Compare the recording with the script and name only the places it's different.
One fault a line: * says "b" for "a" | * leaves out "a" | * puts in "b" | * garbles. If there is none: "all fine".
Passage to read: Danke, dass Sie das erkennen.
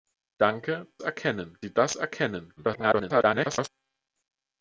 * says "erkennen" for "dass"
* garbles